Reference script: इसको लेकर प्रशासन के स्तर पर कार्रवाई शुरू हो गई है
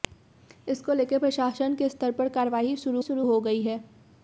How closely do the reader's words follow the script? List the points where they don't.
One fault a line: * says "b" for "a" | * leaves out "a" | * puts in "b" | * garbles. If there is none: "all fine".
* puts in "शुरू"